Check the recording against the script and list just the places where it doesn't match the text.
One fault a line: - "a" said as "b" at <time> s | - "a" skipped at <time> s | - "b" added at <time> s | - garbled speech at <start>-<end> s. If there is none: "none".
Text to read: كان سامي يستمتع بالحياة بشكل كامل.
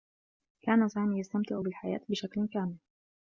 none